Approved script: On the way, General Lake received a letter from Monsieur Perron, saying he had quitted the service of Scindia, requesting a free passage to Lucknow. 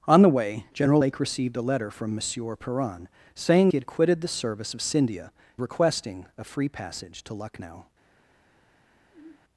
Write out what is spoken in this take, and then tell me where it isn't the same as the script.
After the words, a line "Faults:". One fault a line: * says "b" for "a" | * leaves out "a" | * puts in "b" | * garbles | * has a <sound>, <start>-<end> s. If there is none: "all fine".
On the way, General Lake received a letter from Monsieur Perron, saying he had quitted the service of Scindia, requesting a free passage to Lucknow.
Faults:
* has a sigh, 9.1-9.4 s